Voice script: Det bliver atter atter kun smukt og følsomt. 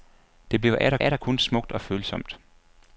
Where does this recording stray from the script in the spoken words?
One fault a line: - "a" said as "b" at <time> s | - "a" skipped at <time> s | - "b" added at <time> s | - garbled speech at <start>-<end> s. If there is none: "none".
none